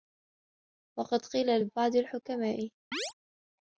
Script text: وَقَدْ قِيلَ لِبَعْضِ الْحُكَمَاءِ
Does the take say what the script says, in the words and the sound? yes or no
no